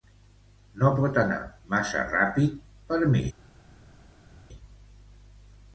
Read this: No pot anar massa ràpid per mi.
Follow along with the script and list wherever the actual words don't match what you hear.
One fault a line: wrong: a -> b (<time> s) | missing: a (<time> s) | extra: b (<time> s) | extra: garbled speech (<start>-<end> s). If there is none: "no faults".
no faults